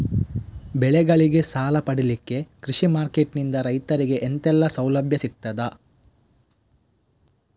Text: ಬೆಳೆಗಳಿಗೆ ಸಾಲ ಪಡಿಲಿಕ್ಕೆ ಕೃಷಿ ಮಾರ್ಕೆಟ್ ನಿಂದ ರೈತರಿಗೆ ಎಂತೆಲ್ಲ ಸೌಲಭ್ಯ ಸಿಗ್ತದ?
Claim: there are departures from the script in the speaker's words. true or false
false